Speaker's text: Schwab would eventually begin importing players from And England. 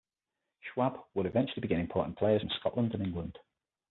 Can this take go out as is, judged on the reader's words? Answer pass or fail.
fail